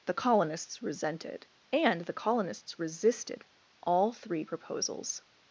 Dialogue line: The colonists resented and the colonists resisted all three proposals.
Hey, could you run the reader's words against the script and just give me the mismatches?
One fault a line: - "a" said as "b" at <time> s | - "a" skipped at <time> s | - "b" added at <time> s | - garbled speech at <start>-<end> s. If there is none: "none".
none